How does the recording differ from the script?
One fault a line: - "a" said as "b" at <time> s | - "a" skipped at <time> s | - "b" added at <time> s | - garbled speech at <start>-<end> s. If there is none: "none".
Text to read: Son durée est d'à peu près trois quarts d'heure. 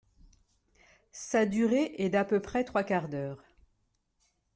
- "Son" said as "Sa" at 1.1 s